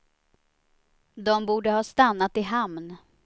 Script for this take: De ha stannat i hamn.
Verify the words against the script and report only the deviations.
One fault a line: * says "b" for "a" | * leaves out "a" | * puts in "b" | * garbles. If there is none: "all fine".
* puts in "borde"